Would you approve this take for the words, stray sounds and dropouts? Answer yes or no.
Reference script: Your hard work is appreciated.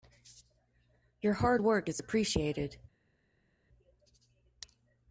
yes